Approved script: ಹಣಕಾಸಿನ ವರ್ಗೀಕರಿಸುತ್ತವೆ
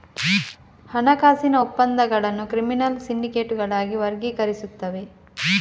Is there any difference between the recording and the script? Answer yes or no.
yes